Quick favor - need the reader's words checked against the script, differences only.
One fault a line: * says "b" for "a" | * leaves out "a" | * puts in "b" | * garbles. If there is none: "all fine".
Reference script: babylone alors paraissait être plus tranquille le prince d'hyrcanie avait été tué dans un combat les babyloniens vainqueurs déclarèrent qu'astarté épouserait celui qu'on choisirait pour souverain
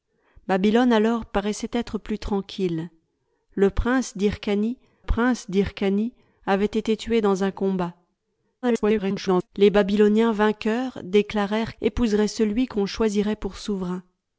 * puts in "prince d'hyrcanie"
* garbles
* leaves out "qu'astarté"